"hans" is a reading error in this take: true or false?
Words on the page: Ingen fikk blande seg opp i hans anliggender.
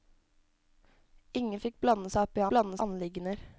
true